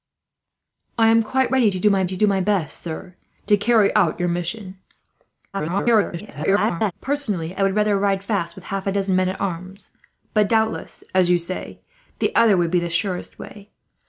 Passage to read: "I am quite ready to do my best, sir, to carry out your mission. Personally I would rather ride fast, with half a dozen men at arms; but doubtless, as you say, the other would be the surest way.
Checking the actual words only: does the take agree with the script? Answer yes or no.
no